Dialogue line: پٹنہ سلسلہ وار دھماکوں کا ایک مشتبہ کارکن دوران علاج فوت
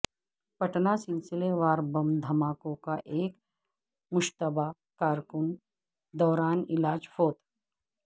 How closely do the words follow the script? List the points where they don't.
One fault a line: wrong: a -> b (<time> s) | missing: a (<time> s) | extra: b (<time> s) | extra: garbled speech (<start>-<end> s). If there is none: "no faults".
extra: بم (1.9 s)